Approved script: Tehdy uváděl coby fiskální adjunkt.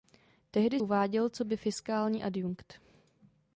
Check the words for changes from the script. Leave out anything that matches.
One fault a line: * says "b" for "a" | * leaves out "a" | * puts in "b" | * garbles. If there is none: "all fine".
all fine